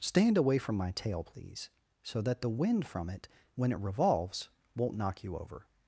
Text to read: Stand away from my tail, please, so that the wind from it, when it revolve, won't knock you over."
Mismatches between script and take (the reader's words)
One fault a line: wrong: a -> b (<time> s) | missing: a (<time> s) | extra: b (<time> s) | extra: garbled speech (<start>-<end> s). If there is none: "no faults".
wrong: revolve -> revolves (3.8 s)